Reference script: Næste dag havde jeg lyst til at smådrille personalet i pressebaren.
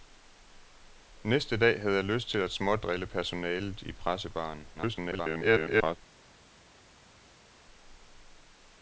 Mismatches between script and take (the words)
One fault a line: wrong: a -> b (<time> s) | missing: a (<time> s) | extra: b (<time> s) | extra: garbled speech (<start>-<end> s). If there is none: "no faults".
extra: garbled speech (4.7-6.0 s)